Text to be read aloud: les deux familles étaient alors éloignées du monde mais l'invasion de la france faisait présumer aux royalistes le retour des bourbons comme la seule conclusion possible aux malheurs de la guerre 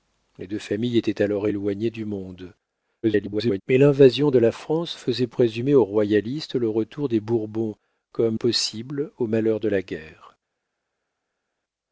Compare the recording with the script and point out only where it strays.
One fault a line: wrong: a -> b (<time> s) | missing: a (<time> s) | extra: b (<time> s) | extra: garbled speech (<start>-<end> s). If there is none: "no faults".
extra: garbled speech (3.0-3.6 s)
missing: la seule conclusion (8.4 s)